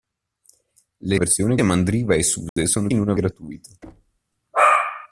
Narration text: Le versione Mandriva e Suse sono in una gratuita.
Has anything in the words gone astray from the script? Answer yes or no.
no